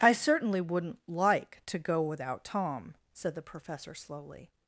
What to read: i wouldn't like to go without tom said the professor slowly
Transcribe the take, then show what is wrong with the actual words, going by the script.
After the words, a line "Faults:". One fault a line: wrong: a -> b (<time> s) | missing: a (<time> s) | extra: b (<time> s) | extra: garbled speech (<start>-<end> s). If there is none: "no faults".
i certainly wouldn't like to go without tom said the professor slowly
Faults:
extra: certainly (0.1 s)